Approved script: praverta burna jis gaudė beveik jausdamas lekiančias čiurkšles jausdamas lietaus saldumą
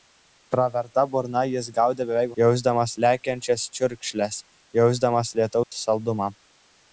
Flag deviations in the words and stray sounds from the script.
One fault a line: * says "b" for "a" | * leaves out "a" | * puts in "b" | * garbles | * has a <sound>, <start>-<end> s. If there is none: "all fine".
* has a dropout, 5.6-5.7 s